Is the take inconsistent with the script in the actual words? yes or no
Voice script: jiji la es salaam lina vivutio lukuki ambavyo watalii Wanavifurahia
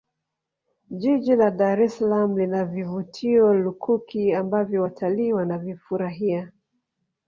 yes